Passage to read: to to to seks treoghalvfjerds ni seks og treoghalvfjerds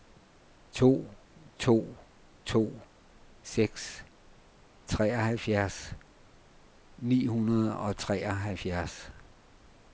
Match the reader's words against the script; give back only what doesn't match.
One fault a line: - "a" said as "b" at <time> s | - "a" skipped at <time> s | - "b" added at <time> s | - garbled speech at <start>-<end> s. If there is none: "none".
- "seks" said as "hundrede" at 7.3 s